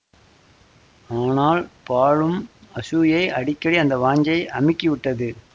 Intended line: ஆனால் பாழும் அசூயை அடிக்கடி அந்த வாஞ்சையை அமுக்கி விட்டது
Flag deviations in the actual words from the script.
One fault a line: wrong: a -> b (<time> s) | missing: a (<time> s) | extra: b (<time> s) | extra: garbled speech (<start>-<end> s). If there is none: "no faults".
no faults